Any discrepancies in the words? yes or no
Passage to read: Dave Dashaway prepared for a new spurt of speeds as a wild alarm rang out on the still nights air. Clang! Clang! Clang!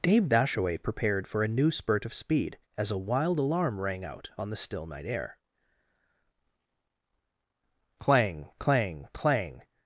yes